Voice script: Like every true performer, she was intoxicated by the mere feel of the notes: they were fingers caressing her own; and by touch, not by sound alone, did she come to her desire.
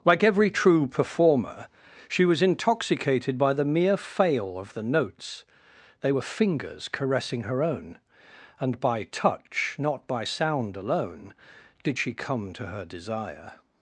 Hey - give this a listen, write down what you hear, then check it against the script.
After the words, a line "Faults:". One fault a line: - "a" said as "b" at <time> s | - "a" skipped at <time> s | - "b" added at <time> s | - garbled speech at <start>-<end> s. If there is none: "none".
Like every true performer, she was intoxicated by the mere fail of the notes: they were fingers caressing her own; and by touch, not by sound alone, did she come to her desire.
Faults:
- "feel" said as "fail" at 4.0 s